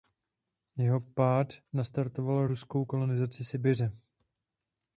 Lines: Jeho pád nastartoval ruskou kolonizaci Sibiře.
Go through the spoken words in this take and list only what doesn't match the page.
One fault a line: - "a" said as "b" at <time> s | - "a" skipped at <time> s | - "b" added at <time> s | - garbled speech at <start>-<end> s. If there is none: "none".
none